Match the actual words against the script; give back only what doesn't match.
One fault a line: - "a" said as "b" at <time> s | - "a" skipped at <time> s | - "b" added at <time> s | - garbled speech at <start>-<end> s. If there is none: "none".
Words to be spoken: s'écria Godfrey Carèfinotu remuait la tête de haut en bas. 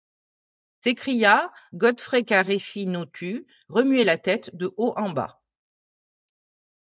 none